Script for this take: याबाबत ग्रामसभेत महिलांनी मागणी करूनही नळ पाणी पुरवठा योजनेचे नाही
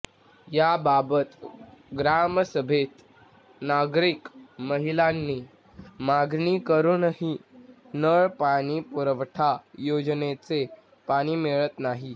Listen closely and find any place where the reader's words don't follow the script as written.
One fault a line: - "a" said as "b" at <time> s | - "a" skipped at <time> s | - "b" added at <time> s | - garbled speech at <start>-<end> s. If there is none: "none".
- "नागरिक" added at 3.6 s
- "पाणी मिळत" added at 11.1 s